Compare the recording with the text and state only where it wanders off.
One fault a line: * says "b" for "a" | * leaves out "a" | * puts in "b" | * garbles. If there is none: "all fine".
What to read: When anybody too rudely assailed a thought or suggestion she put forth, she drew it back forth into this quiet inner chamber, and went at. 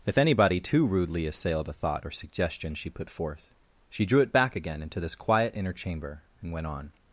* says "If" for "When"
* says "again" for "forth"
* says "on" for "at"